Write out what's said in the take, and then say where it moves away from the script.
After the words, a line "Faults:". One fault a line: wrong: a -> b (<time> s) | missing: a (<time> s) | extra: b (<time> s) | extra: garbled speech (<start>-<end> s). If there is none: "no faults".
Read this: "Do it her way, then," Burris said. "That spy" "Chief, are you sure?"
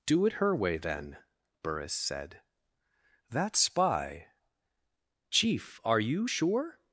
"Do it her way, then," Burris said. "That spy" "Chief, are you sure?"
Faults:
no faults